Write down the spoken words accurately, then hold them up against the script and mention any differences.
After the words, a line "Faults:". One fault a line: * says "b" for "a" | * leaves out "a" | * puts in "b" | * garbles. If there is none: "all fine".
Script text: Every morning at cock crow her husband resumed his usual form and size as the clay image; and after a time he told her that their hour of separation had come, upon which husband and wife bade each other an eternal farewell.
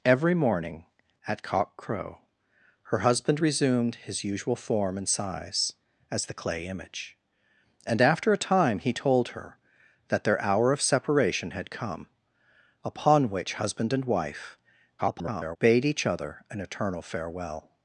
Every morning at cock crow her husband resumed his usual form and size as the clay image; and after a time he told her that their hour of separation had come, upon which husband and wife [garbled] bade each other an eternal farewell.
Faults:
* garbles